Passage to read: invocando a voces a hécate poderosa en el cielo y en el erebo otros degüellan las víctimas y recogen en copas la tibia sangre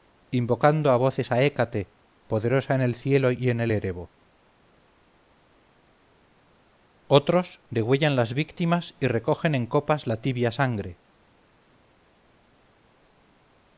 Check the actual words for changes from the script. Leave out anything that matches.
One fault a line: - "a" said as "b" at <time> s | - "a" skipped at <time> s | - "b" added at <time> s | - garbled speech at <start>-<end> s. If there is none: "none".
none